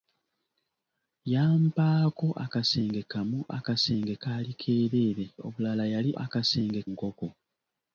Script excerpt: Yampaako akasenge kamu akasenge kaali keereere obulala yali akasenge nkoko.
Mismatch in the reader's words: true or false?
false